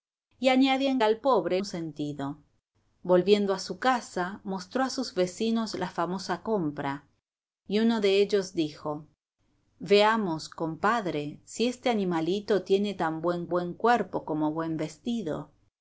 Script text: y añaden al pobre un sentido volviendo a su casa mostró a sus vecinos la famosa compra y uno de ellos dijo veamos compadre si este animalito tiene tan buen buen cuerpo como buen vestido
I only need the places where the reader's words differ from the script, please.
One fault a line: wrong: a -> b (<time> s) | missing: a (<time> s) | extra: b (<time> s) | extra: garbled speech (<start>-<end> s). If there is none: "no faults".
no faults